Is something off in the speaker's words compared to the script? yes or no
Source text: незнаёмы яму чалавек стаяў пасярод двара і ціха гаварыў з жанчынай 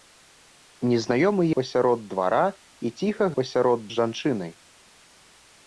yes